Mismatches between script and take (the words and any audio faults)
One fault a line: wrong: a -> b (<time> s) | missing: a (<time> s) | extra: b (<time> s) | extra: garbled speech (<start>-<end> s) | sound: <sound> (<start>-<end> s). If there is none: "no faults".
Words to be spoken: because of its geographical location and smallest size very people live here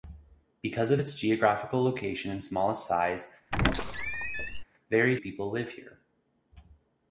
sound: squeak (3.5-4.6 s)